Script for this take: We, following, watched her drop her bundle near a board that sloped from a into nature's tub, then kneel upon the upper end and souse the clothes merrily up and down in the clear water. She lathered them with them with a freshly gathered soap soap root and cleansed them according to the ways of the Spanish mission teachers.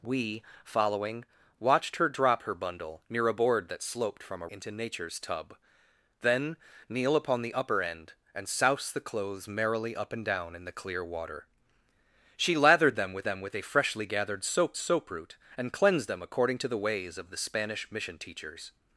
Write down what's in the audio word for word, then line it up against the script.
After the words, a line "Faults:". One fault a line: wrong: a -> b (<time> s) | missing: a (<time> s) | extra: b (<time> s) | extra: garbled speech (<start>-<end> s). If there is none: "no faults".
We, following, watched her drop her bundle near a board that sloped from a into nature's tub, then kneel upon the upper end and souse the clothes merrily up and down in the clear water. She lathered them with them with a freshly gathered soap soap root and cleansed them according to the ways of the Spanish mission teachers.
Faults:
no faults